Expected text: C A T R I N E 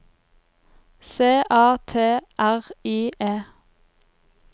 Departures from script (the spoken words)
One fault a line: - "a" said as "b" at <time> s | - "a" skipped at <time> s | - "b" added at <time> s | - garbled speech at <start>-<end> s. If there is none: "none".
- "N" skipped at 3.1 s